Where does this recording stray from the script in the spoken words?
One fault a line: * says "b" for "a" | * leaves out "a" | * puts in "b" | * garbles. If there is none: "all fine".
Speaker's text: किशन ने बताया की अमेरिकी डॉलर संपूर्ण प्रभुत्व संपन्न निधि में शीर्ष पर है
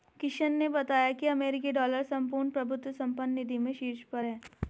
all fine